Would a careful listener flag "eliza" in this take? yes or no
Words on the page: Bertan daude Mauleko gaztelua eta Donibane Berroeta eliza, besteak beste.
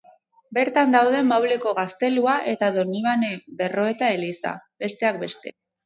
no